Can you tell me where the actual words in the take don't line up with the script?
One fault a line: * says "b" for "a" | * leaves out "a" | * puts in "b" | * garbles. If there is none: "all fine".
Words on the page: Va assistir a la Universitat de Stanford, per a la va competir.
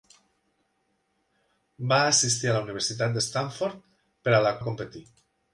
all fine